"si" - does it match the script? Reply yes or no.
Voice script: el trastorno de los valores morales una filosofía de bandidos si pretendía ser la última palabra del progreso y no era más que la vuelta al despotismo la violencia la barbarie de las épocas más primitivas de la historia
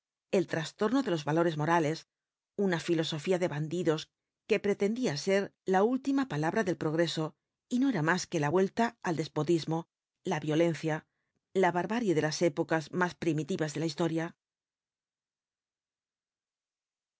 no